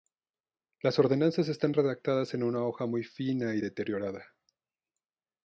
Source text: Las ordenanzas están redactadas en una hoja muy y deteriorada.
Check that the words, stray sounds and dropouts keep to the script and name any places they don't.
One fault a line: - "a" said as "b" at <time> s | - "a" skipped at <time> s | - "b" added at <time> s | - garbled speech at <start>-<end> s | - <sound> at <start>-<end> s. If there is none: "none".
- "fina" added at 3.0 s